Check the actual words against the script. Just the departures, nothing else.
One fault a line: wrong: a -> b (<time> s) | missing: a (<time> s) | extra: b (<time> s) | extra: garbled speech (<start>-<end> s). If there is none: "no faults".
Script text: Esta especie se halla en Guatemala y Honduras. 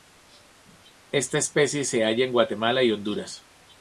no faults